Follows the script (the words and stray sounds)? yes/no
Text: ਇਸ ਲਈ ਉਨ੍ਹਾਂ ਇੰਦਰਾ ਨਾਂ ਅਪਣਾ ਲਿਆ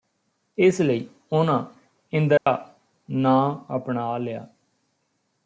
no